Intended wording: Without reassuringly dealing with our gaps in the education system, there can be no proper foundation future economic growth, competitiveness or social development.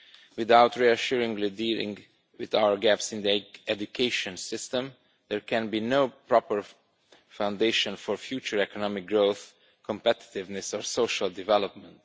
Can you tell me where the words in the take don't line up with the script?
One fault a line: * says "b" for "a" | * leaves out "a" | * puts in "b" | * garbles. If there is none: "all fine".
* puts in "for"